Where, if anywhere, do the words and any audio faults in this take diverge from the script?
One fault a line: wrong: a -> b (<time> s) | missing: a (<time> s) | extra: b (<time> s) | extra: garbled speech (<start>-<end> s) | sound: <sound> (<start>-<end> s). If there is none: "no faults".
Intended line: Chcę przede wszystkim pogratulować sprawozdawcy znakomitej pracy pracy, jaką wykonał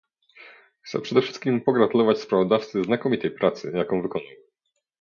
missing: pracy (3.7 s)